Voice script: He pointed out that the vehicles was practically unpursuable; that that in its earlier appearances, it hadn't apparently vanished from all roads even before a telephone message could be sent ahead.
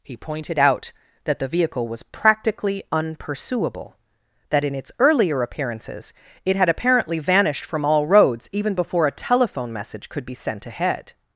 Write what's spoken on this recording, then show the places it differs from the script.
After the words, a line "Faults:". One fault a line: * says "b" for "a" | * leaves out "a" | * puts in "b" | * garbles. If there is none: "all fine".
He pointed out that the vehicle was practically unpursuable; that in its earlier appearances, it had apparently vanished from all roads even before a telephone message could be sent ahead.
Faults:
* says "vehicle" for "vehicles"
* leaves out "that"
* says "had" for "hadn't"